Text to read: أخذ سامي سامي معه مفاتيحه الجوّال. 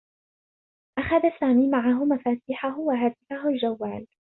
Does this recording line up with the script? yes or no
no